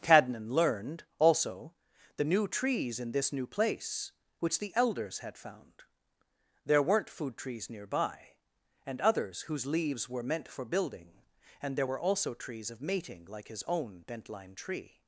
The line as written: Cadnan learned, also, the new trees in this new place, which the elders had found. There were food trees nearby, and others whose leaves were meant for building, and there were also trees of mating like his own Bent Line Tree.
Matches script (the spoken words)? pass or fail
fail